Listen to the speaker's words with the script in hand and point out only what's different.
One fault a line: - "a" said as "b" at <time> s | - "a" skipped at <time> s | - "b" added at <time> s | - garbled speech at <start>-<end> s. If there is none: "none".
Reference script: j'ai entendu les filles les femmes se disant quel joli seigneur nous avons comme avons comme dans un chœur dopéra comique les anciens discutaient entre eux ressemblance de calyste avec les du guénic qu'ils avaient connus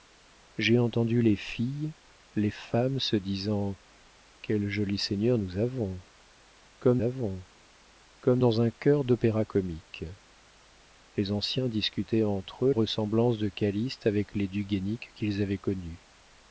none